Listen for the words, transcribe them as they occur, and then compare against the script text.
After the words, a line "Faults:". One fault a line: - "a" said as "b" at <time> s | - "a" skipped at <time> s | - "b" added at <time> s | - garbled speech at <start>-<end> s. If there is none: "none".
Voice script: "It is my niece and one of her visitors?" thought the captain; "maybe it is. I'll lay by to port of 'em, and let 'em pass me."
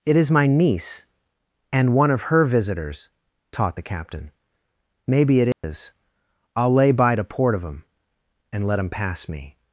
"It is my niece and one of her visitors?" taught the captain; "maybe it is. I'll lay by to port of 'em, and let 'em pass me."
Faults:
- "thought" said as "taught" at 3.5 s